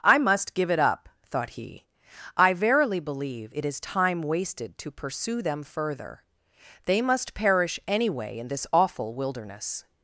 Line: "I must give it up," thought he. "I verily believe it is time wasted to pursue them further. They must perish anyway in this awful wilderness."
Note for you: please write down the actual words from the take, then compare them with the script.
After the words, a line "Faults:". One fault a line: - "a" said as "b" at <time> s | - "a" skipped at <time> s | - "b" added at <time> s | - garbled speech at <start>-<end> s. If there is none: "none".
"I must give it up," thought he. "I verily believe it is time wasted to pursue them further. They must perish anyway in this awful wilderness."
Faults:
none